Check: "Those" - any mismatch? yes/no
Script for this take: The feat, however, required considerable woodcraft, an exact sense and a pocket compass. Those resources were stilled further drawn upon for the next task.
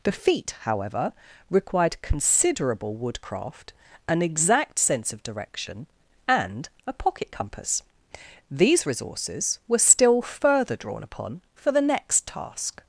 yes